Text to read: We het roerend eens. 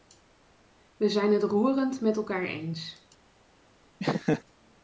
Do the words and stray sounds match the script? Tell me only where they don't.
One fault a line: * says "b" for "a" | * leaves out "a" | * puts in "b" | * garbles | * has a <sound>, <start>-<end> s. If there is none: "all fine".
* puts in "zijn"
* puts in "met elkaar"
* has a laugh, 4.0-4.4 s